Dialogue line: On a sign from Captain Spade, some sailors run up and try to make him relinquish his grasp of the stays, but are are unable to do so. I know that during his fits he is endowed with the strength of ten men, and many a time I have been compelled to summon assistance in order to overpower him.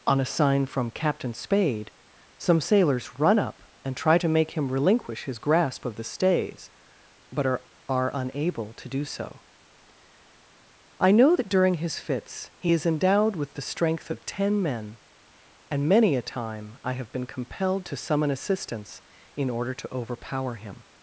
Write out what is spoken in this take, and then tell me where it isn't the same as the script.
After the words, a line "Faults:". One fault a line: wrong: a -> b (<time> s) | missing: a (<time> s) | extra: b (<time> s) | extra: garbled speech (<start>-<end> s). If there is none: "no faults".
On a sign from Captain Spade, some sailors run up and try to make him relinquish his grasp of the stays, but are are unable to do so. I know that during his fits he is endowed with the strength of ten men, and many a time I have been compelled to summon assistance in order to overpower him.
Faults:
no faults